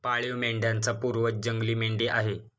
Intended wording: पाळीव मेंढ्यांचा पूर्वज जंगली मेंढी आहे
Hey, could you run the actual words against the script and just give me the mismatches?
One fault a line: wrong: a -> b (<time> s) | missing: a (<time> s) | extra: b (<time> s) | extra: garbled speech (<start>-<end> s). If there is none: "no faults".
no faults